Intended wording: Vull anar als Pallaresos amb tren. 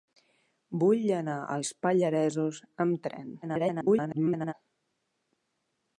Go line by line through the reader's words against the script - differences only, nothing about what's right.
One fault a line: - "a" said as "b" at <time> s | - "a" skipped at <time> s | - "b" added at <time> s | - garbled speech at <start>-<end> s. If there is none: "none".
- garbled speech at 3.4-4.5 s